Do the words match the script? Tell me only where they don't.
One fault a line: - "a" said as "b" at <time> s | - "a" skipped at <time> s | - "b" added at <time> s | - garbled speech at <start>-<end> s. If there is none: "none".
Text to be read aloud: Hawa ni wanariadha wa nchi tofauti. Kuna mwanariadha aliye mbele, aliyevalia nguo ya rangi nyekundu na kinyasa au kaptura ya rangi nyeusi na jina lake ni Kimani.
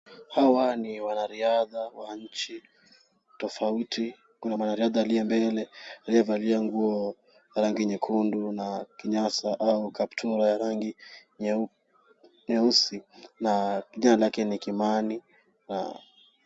none